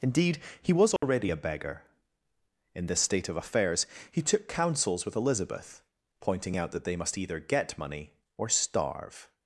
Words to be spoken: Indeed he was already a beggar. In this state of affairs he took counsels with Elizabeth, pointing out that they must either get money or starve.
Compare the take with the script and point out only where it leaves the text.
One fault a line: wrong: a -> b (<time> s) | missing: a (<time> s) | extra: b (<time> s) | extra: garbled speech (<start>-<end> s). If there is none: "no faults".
no faults